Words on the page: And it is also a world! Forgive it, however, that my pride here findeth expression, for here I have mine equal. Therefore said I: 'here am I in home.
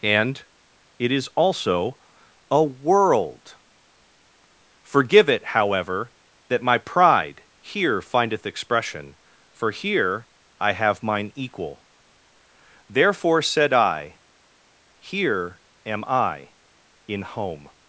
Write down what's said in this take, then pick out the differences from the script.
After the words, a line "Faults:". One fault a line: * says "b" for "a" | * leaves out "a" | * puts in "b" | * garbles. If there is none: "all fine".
And it is also a world! Forgive it, however, that my pride here findeth expression, for here I have mine equal. Therefore said I: 'here am I in home.
Faults:
all fine